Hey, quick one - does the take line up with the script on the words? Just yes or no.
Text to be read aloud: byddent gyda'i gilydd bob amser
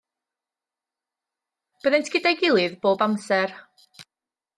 yes